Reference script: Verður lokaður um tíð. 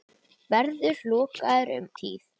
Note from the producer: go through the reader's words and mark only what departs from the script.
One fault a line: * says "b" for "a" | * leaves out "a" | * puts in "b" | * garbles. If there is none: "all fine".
all fine